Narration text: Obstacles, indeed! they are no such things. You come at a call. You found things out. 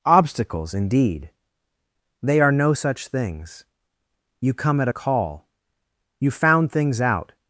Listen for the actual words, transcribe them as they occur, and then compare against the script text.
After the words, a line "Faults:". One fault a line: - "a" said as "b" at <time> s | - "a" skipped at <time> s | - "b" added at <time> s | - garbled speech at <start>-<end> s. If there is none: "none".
Obstacles, indeed! they are no such things. You come at a call. You found things out.
Faults:
none